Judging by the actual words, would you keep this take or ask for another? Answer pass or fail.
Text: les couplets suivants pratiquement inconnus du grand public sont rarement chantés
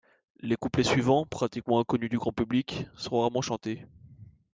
pass